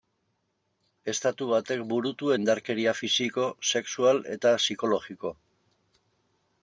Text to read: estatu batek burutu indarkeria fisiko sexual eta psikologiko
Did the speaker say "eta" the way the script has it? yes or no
yes